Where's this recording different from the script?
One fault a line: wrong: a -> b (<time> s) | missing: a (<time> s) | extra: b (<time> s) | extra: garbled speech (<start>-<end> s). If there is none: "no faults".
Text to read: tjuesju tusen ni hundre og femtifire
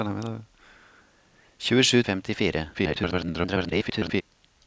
missing: tusen ni hundre (2.0 s)
extra: garbled speech (2.7-4.2 s)